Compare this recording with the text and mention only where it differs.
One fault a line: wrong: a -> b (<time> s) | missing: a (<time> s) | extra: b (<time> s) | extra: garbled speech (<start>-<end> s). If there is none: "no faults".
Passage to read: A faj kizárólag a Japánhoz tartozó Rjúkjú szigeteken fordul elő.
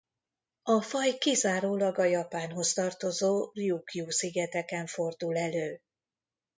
no faults